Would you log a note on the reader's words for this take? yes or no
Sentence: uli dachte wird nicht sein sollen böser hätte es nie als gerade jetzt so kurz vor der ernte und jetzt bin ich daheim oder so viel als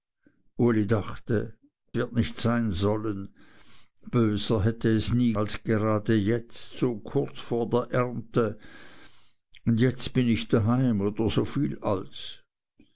no